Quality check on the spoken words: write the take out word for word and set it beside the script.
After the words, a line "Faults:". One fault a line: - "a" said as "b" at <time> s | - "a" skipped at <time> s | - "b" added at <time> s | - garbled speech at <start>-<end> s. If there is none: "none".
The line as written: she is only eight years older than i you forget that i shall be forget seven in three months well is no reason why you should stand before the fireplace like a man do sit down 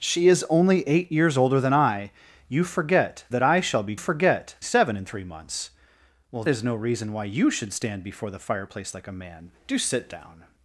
she is only eight years older than i you forget that i shall be forget seven in three months well is no reason why you should stand before the fireplace like a man do sit down
Faults:
none